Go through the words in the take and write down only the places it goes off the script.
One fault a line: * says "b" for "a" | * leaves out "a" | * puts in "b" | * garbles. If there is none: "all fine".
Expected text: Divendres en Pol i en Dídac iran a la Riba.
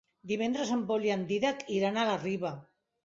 all fine